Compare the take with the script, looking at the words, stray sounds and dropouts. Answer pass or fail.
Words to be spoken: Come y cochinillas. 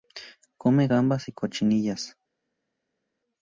fail